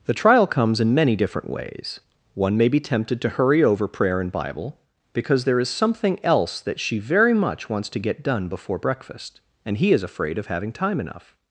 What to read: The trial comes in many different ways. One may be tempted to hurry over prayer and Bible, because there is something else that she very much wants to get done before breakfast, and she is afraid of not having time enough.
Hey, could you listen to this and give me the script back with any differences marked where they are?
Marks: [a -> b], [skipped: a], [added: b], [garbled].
The trial comes in many different ways. One may be tempted to hurry over prayer and Bible, because there is something else that she very much wants to get done before breakfast, and [she -> he] is afraid of [skipped: not] having time enough.